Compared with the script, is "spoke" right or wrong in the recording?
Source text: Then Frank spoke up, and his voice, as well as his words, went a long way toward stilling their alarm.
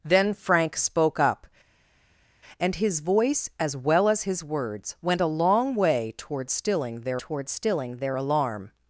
right